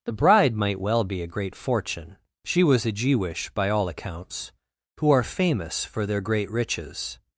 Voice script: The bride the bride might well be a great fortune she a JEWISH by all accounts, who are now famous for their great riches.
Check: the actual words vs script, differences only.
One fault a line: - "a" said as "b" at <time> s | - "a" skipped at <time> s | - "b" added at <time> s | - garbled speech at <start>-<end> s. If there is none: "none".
- "the bride" skipped at 0.6 s
- "was" added at 2.6 s
- "now" skipped at 5.2 s